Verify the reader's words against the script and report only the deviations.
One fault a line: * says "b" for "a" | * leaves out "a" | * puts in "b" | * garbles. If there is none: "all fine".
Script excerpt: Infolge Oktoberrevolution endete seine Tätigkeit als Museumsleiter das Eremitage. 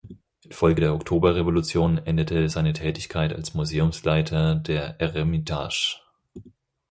* puts in "der"
* says "der" for "das"